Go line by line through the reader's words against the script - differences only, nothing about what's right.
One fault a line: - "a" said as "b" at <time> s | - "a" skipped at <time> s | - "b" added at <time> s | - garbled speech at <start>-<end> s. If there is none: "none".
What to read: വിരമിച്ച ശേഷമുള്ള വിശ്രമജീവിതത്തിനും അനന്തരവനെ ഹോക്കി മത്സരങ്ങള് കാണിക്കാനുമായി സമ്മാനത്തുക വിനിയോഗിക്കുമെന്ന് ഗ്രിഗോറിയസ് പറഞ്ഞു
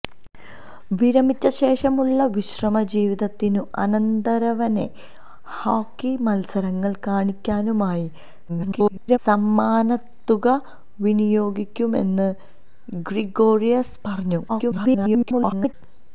- garbled speech at 8.5-9.2 s
- garbled speech at 14.5-15.7 s